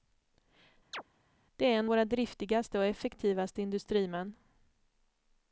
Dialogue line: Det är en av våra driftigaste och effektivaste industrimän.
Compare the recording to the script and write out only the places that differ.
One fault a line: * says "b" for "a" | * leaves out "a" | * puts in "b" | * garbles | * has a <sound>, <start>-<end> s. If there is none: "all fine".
* has a chirp, 0.9-1.0 s
* leaves out "av"